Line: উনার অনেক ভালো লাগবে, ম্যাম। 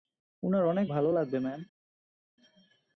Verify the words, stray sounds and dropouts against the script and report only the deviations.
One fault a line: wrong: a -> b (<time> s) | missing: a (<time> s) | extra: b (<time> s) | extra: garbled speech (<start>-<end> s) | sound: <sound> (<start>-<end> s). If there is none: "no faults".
no faults